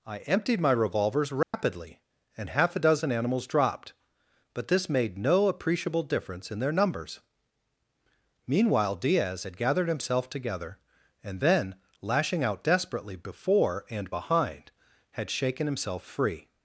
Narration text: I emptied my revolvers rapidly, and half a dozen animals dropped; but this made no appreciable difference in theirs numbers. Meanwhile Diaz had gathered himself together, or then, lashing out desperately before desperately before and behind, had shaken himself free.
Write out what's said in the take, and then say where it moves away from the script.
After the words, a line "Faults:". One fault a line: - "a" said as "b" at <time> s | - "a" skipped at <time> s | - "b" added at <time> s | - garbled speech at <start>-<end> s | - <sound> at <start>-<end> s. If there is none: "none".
I emptied my revolvers rapidly, and half a dozen animals dropped; but this made no appreciable difference in their numbers. Meanwhile Diaz had gathered himself together, and then, lashing out desperately before and behind, had shaken himself free.
Faults:
- dropout at 1.4-1.5 s
- "theirs" said as "their" at 6.6 s
- "or" said as "and" at 11.2 s
- "desperately before" skipped at 13.9 s